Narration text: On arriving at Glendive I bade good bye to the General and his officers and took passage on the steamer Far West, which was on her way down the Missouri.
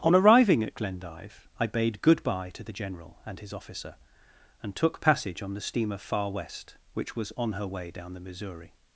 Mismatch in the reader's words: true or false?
true